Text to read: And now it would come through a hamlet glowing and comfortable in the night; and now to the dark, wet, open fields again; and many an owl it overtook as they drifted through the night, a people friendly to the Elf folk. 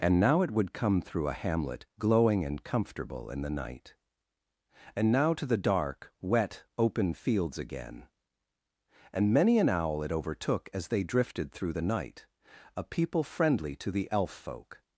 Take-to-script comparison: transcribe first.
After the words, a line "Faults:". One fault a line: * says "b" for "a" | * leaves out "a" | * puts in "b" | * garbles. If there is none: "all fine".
And now it would come through a hamlet glowing and comfortable in the night; and now to the dark, wet, open fields again; and many an owl it overtook as they drifted through the night, a people friendly to the Elf folk.
Faults:
all fine